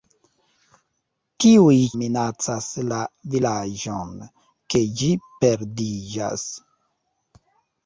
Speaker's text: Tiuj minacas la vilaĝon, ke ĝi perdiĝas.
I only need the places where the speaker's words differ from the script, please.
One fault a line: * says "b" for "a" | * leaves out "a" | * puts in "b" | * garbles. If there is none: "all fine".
all fine